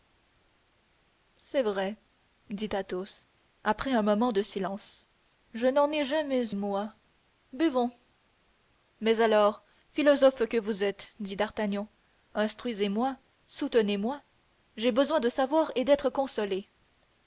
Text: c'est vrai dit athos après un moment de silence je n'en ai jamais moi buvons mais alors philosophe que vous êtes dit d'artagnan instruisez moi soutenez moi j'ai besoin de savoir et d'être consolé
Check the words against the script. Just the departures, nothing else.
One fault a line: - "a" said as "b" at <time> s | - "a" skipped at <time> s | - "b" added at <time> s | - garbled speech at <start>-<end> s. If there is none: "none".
none